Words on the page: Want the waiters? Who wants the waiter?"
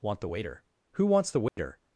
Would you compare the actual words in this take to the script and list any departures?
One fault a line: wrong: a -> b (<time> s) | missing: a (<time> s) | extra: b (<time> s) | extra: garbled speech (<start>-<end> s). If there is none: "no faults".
wrong: waiters -> waiter (0.3 s)